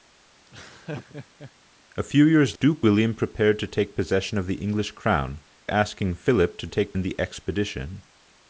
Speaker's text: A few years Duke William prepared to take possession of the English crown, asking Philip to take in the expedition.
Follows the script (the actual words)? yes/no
yes